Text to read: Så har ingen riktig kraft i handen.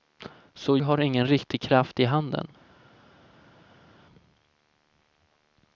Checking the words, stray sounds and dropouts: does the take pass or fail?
pass